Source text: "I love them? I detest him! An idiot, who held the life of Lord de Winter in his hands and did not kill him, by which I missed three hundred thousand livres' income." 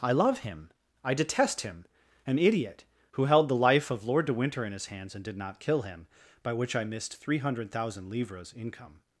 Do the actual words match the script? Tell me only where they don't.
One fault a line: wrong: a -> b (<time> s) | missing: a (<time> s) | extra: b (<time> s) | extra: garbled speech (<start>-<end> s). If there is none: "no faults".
wrong: them -> him (0.4 s)